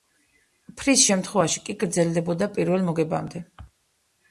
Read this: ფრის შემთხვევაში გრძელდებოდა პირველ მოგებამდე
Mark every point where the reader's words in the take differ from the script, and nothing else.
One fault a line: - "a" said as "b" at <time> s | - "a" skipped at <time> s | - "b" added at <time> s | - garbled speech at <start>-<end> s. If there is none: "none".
- "კი" added at 1.7 s